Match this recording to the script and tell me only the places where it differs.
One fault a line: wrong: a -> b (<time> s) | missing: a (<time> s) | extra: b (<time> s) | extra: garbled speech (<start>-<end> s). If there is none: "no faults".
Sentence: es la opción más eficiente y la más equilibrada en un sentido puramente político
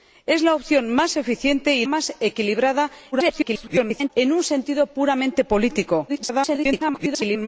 missing: la (1.9 s)
extra: garbled speech (3.1-4.1 s)
extra: garbled speech (6.1-7.5 s)